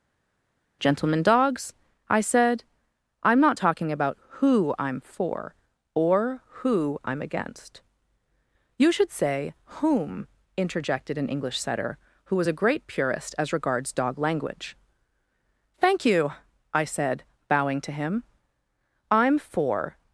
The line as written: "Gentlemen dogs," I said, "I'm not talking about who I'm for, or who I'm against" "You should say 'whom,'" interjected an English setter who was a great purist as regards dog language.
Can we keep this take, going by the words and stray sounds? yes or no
no